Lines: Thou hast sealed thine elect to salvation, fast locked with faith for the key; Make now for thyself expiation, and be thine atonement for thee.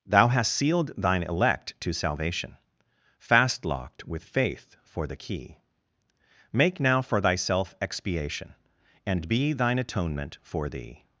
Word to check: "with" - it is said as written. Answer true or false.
true